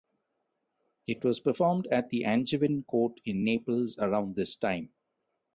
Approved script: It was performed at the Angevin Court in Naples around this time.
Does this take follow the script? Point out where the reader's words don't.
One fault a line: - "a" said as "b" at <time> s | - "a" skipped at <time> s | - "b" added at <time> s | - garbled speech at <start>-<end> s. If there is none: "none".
none